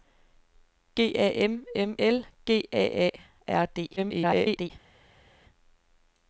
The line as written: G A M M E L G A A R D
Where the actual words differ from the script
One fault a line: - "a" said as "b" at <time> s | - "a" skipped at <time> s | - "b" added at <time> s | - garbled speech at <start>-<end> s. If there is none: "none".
- "E" skipped at 1.9 s
- garbled speech at 4.0-4.7 s